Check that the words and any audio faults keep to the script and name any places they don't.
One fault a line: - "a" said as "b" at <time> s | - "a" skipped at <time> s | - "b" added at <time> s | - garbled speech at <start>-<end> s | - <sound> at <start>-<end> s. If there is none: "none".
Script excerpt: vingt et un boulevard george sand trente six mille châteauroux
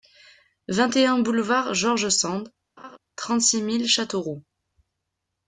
- laugh at 2.8-3.0 s